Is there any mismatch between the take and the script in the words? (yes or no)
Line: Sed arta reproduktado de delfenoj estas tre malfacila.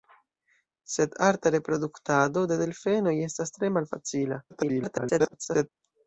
yes